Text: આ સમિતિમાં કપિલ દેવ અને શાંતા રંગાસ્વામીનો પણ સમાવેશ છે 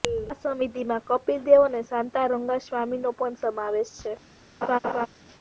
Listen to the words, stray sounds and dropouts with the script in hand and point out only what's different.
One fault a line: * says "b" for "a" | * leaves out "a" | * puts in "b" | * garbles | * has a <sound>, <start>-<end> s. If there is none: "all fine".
* has a laugh, 4.6-5.1 s